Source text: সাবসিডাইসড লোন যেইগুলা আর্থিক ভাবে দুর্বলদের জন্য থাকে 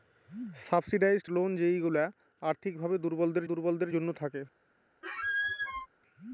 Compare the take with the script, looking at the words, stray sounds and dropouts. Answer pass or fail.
fail